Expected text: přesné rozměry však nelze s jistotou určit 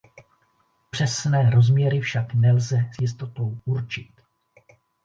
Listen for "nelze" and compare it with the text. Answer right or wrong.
right